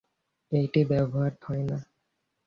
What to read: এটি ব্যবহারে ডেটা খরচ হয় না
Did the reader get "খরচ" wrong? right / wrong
wrong